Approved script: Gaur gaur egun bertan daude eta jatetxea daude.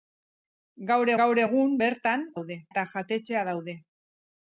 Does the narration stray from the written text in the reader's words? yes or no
no